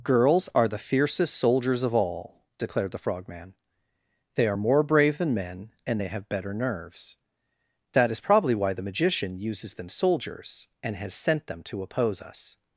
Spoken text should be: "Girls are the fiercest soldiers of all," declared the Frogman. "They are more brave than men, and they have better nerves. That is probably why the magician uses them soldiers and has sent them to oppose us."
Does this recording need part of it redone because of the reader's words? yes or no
no